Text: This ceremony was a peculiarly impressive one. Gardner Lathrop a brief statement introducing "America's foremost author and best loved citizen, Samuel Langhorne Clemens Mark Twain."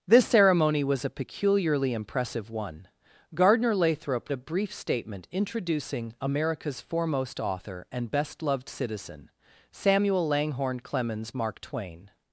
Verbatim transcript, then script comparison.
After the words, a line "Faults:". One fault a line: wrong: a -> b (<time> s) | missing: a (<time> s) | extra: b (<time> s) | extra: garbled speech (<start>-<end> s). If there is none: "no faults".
This ceremony was a peculiarly impressive one. Gardner Lathrop a brief statement introducing "America's foremost author and best loved citizen, Samuel Langhorne Clemens Mark Twain."
Faults:
no faults